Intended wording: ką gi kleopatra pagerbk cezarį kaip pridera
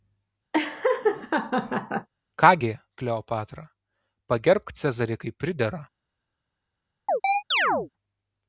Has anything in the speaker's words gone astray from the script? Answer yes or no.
no